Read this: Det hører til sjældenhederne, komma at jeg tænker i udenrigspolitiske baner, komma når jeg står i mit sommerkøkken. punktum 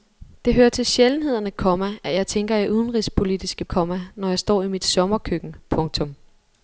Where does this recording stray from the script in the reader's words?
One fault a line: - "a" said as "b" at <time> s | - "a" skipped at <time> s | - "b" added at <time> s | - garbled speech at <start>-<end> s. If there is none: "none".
- "baner" skipped at 3.6 s